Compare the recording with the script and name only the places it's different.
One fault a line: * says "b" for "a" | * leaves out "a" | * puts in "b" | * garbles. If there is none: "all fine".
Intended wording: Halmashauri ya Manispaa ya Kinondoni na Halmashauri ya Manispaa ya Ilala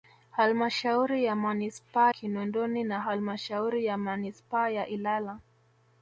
* leaves out "ya"